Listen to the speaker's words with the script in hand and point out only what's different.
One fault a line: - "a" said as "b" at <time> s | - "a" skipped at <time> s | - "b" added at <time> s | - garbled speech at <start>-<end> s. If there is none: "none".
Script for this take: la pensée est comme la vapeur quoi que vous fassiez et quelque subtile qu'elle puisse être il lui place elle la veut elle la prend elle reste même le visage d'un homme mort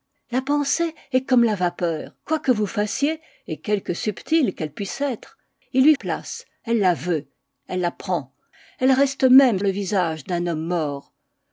none